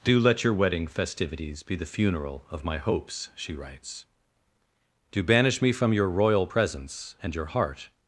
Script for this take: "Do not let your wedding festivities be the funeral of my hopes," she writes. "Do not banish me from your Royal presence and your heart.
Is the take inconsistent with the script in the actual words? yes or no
yes